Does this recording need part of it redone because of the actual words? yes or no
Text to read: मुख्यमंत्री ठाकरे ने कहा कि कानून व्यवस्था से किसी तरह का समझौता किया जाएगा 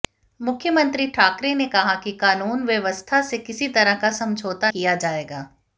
no